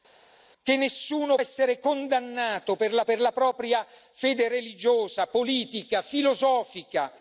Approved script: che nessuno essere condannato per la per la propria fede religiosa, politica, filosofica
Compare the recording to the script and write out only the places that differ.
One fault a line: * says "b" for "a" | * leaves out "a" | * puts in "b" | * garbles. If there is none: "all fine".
all fine